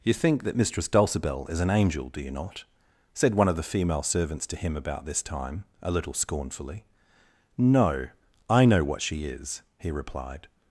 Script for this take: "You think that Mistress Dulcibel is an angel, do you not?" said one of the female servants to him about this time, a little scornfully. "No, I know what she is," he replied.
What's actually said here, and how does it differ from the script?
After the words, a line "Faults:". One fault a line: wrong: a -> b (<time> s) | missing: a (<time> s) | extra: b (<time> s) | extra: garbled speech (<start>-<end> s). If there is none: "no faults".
"You think that Mistress Dulcibel is an angel, do you not?" said one of the female servants to him about this time, a little scornfully. "No, I know what she is," he replied.
Faults:
no faults